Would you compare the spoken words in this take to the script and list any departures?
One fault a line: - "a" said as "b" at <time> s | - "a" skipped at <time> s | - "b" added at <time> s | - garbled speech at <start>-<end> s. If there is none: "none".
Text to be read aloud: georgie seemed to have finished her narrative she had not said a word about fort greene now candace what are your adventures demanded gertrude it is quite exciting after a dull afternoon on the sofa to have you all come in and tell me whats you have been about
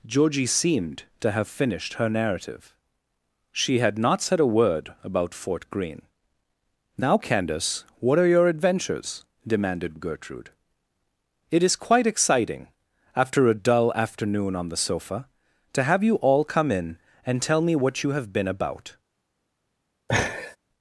- "whats" said as "what" at 17.7 s